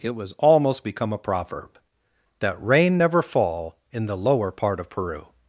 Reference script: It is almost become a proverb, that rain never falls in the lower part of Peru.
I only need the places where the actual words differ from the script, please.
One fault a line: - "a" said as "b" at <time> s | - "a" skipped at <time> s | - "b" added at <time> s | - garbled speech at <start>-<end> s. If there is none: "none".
- "is" said as "was" at 0.1 s
- "falls" said as "fall" at 3.2 s